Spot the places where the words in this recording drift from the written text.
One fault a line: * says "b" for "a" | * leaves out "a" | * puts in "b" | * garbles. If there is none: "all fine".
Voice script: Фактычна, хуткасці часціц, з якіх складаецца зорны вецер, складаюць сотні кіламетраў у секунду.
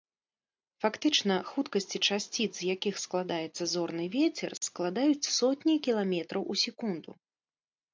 all fine